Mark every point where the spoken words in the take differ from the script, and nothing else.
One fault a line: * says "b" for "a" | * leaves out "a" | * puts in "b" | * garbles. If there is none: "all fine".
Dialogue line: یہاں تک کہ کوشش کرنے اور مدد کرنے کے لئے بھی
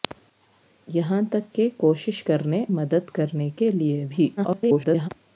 * leaves out "اور"
* garbles